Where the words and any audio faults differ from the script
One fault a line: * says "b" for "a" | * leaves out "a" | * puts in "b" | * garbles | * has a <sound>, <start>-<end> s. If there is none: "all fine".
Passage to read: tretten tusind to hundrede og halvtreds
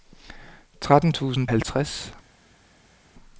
* leaves out "to hundrede og"